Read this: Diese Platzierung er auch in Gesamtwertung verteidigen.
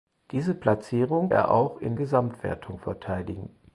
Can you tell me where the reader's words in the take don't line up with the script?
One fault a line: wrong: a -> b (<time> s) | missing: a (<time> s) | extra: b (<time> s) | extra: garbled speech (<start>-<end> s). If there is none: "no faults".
no faults